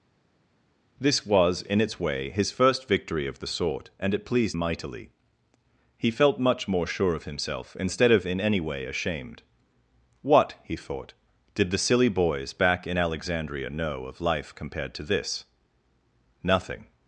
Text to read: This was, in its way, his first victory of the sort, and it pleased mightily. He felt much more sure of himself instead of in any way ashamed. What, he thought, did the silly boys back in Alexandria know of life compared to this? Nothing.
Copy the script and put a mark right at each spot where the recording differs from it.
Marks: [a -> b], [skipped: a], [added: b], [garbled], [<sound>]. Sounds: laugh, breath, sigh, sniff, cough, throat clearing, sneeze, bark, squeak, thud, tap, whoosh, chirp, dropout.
This was, in its way, his first victory of the sort, and it pleased mightily. He felt much more sure of himself instead of in any way ashamed. What, he thought, did the silly boys back in Alexandria know of life compared to this? Nothing.